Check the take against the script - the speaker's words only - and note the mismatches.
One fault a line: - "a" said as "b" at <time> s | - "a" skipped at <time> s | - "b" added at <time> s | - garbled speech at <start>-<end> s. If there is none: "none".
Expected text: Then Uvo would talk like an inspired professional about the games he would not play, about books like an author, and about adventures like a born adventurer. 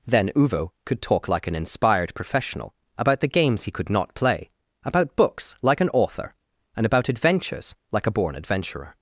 - "would" said as "could" at 0.8 s
- "would" said as "could" at 3.7 s